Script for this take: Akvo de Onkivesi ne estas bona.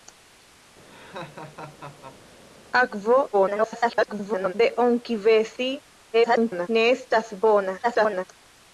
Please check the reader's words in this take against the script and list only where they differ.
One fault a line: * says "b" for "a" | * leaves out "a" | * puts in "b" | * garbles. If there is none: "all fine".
* garbles
* garbles
* garbles